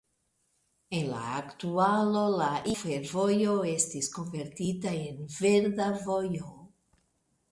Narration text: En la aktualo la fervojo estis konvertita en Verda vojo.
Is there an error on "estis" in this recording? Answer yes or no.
no